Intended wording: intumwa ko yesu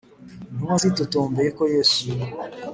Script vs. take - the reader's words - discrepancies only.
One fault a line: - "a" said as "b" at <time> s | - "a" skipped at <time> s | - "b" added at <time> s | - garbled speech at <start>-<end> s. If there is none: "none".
- "zitotombeye" added at 0.8 s